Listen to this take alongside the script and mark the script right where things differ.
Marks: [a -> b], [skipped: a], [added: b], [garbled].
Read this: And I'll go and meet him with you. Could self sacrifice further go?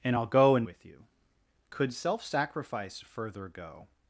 And I'll go and [skipped: meet him] with you. Could self sacrifice further go?